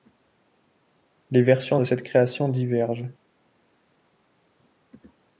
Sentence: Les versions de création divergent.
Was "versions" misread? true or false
false